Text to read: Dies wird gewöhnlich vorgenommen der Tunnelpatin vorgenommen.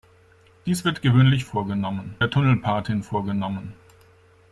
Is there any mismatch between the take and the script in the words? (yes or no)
no